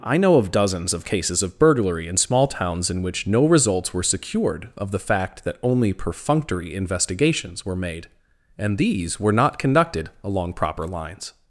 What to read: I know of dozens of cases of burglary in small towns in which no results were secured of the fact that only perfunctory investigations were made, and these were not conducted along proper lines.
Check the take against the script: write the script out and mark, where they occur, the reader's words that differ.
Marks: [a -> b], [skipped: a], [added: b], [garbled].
I know of dozens of cases of burglary in small towns in which no results were secured of the fact that only perfunctory investigations were made, and these were not conducted along proper lines.